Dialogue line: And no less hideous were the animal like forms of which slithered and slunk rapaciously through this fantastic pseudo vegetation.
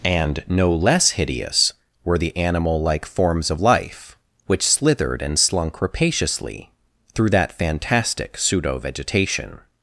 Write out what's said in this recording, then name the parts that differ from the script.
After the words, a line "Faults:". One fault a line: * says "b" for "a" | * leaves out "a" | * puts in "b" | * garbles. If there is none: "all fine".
And no less hideous were the animal like forms of life which slithered and slunk rapaciously through that fantastic pseudo vegetation.
Faults:
* puts in "life"
* says "that" for "this"